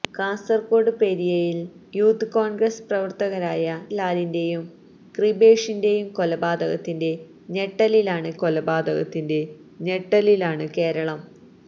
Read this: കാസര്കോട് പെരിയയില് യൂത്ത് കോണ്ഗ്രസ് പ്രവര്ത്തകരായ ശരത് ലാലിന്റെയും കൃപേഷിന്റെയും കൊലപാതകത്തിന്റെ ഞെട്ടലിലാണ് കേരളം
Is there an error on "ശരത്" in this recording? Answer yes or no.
yes